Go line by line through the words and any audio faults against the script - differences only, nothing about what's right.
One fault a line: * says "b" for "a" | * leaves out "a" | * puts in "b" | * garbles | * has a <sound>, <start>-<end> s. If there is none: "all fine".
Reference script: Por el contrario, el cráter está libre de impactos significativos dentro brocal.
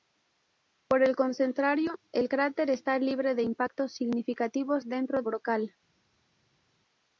all fine